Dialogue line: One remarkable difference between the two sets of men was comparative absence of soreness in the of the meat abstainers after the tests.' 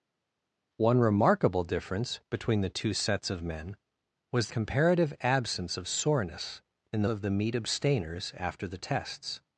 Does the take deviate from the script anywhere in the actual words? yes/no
no